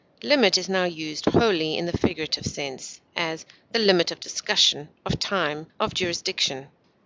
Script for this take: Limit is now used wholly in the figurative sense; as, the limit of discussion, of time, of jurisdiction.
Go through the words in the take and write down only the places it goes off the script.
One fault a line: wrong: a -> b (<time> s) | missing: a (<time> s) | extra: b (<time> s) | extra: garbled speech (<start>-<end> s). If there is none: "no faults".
no faults